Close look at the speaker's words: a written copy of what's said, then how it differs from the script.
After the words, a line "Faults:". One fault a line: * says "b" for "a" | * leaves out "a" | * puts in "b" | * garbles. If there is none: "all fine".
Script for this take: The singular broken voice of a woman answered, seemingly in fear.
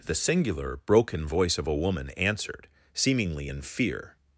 The singular broken voice of a woman answered, seemingly in fear.
Faults:
all fine